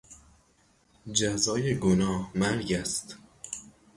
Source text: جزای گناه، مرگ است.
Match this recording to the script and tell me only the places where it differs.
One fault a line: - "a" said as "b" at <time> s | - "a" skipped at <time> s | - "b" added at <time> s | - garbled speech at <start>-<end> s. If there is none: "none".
none